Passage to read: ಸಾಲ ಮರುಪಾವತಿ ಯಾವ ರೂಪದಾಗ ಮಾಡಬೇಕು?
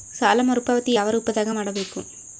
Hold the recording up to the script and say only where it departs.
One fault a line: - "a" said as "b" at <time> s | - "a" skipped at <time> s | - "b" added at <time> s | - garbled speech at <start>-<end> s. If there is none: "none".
none